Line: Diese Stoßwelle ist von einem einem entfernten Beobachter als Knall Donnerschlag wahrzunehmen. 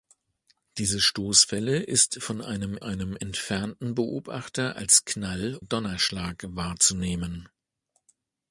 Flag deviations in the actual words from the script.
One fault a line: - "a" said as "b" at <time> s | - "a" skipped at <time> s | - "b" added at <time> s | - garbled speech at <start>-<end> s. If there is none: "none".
none